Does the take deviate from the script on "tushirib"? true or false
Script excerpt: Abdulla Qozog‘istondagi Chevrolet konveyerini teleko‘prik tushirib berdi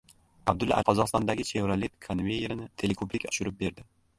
false